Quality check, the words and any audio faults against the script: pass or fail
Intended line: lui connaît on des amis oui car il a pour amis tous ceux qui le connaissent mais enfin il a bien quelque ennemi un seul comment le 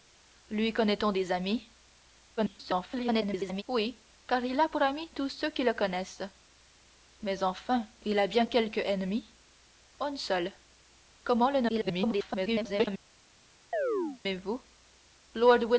fail